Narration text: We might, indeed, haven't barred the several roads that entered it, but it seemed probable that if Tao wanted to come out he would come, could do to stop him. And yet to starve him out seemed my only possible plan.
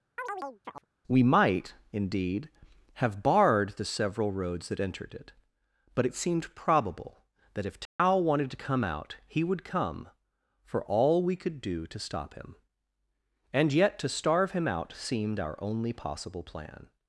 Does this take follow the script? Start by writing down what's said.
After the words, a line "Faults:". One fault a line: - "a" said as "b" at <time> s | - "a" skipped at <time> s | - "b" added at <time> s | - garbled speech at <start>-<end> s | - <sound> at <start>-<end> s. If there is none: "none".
We might, indeed, have barred the several roads that entered it, but it seemed probable that if Tao wanted to come out he would come, for all we could do to stop him. And yet to starve him out seemed our only possible plan.
Faults:
- chirp at 0.2-0.9 s
- "haven't" said as "have" at 2.9 s
- dropout at 7.9-8.0 s
- "for all we" added at 10.6 s
- "my" said as "our" at 15.4 s